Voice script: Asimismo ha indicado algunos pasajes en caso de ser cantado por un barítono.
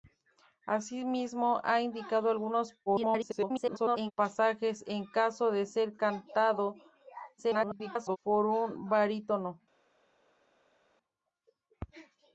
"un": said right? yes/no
yes